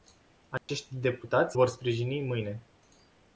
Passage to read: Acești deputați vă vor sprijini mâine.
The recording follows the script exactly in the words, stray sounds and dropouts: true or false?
false